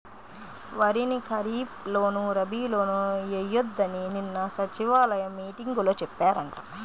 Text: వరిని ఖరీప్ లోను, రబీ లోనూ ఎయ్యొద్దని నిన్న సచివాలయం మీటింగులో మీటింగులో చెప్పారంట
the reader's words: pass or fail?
fail